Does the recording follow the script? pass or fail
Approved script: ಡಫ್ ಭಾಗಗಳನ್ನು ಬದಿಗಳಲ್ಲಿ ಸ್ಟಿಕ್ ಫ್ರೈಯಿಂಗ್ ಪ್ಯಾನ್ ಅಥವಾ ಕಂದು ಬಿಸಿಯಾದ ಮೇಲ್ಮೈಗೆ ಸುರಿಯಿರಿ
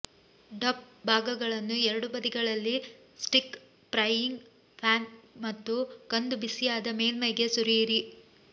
fail